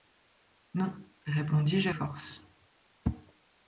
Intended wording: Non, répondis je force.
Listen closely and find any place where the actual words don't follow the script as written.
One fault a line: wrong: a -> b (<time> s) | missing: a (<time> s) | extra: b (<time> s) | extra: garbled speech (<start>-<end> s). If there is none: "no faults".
no faults